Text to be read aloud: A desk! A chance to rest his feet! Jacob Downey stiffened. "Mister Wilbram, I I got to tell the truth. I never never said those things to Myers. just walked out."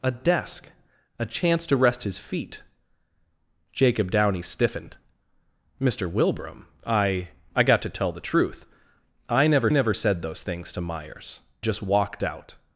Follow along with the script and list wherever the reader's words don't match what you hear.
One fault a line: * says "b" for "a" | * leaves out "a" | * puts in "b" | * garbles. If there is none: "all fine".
all fine